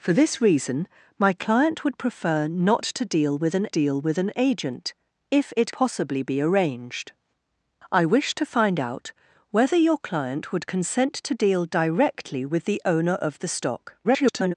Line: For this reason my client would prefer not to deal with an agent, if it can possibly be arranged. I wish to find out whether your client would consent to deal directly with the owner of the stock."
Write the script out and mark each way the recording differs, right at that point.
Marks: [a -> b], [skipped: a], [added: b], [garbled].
For this reason my client would prefer not to deal with an [added: deal with an] agent, if it [skipped: can] possibly be arranged. I wish to find out whether your client would consent to deal directly with the owner of the stock." [garbled]